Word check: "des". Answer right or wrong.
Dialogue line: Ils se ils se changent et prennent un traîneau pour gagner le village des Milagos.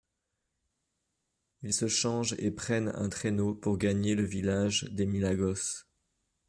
right